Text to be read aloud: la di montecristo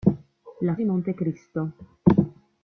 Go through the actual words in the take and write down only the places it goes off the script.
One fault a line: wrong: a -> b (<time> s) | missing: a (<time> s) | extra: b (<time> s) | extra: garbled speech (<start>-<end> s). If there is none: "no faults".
no faults